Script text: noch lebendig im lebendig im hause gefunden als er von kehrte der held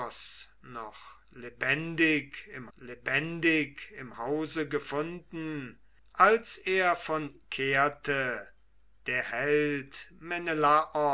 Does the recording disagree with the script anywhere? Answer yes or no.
no